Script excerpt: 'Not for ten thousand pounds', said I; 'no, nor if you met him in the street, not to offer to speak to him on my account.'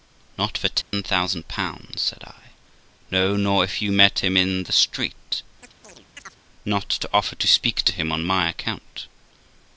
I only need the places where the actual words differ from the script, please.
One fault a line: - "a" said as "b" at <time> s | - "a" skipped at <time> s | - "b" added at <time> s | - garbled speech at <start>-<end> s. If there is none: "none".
none